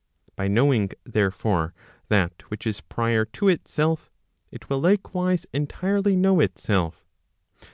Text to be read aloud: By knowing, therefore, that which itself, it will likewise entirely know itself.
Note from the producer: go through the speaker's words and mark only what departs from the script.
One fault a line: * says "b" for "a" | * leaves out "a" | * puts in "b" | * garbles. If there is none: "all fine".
* puts in "is prior to"